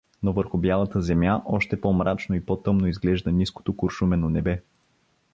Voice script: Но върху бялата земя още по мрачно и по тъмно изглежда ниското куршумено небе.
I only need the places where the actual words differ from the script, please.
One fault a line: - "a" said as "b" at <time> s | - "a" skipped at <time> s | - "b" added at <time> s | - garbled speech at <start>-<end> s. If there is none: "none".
none